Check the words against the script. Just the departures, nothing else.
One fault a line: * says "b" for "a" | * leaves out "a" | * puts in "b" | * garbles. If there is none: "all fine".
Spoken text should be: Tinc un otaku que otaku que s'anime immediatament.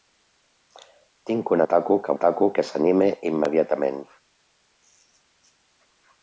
all fine